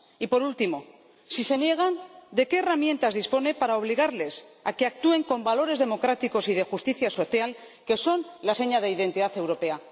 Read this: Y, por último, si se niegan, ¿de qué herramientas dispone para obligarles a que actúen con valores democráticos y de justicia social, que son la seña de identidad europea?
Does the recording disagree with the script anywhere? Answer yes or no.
no